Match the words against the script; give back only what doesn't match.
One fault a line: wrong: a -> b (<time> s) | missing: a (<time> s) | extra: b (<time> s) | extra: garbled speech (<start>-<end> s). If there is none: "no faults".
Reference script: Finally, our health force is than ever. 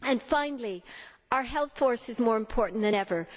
extra: more important (2.2 s)